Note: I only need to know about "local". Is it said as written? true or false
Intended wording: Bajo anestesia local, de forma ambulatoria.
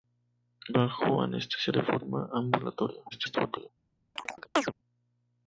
false